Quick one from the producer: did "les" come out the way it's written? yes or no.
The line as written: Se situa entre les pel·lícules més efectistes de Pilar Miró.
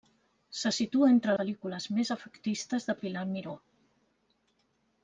no